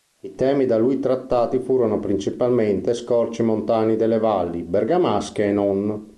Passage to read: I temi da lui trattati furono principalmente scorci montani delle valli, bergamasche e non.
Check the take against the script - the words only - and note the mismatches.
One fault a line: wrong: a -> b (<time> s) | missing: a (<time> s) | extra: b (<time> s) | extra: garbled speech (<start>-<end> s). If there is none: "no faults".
no faults